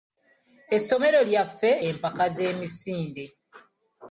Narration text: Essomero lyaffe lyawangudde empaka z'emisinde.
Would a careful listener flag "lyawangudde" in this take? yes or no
yes